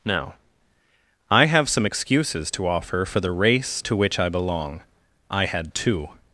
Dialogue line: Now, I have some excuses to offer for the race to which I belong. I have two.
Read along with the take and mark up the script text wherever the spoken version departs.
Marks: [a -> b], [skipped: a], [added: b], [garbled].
Now, I have some excuses to offer for the race to which I belong. I [have -> had] two.